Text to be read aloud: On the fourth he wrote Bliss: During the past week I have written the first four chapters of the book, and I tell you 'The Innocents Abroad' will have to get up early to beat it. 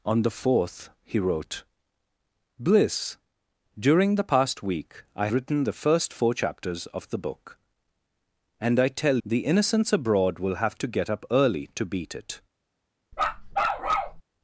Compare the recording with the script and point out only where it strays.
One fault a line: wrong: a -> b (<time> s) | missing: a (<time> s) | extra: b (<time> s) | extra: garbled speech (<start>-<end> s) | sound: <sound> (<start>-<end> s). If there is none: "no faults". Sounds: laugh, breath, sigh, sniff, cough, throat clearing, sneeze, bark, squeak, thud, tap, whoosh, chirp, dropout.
missing: have (5.3 s)
missing: you (9.2 s)
sound: bark (13.1-14.2 s)